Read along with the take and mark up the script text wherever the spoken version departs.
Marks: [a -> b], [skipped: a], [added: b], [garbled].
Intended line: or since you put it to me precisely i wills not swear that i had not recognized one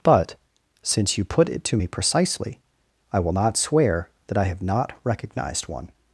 [or -> but] since you put it to me precisely i [wills -> will] not swear that i [had -> have] not recognized one